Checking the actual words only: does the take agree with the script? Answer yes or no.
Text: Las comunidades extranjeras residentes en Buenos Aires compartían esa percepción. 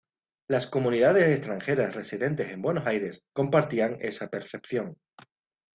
yes